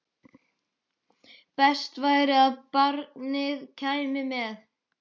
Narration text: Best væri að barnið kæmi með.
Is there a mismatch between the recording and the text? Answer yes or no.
no